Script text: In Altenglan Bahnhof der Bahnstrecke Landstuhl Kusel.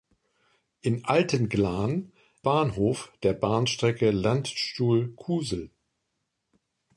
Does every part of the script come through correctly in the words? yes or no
yes